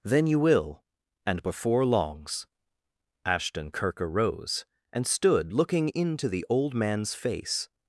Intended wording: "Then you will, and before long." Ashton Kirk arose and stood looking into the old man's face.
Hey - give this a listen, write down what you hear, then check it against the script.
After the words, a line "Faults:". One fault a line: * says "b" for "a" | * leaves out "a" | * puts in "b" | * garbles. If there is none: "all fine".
"Then you will, and before longs." Ashton Kirk arose and stood looking into the old man's face.
Faults:
* says "longs" for "long"